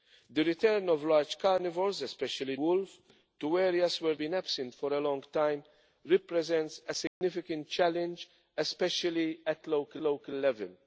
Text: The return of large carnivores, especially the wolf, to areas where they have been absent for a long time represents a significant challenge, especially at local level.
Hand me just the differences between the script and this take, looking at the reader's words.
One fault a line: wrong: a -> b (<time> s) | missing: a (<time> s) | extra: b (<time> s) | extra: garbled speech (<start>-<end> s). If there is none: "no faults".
missing: the (2.5 s)
missing: they have (4.1 s)
extra: local (10.0 s)